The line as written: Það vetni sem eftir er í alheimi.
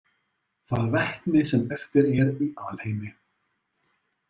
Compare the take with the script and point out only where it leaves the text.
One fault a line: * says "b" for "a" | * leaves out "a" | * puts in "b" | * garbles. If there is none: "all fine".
all fine